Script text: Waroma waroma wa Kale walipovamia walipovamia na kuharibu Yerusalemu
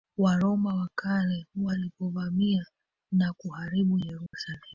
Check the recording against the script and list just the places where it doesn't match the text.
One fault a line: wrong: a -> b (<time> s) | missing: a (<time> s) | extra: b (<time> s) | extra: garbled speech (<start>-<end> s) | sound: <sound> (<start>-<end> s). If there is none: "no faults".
missing: waroma (0.8 s)
missing: walipovamia (2.7 s)
sound: dropout (4.3-4.3 s)